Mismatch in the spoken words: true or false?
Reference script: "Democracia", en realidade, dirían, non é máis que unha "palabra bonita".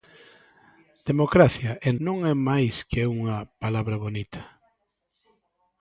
true